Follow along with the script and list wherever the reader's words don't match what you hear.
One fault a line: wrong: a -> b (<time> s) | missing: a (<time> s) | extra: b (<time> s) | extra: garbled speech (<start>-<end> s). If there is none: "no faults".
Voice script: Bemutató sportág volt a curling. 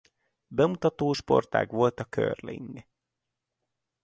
no faults